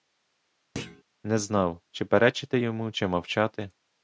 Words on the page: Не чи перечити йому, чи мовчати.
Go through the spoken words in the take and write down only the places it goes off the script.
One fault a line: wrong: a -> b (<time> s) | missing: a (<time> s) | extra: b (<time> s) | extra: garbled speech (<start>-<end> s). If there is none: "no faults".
extra: знав (1.4 s)